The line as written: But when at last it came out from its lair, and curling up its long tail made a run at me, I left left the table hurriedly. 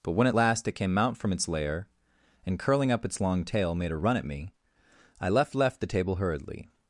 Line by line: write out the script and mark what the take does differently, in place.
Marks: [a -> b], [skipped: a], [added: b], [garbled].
But when at last it came out from its lair, and curling up its long tail made a run at me, I left left the table hurriedly.